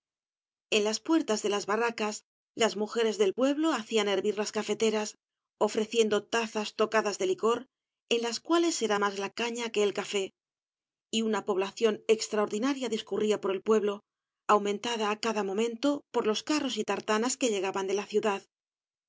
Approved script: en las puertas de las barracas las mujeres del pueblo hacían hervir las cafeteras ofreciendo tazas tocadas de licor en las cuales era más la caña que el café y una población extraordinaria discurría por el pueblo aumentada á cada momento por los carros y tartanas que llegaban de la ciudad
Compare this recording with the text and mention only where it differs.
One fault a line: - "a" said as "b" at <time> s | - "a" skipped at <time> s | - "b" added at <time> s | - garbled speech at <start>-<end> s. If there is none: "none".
none